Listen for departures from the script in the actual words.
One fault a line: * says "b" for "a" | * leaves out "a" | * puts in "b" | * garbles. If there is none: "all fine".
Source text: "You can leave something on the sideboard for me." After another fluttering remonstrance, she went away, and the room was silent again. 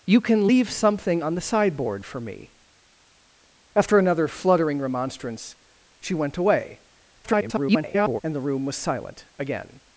* garbles